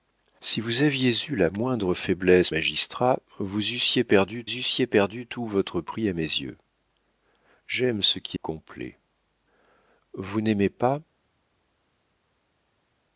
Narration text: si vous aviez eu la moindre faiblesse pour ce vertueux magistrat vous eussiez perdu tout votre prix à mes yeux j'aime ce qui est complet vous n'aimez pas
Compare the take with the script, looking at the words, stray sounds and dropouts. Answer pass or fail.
fail